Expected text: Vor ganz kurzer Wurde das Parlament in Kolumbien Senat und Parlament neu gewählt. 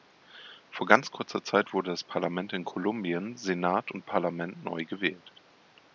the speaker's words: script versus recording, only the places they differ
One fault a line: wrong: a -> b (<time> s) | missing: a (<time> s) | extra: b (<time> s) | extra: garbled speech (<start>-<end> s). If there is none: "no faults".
extra: Zeit (1.4 s)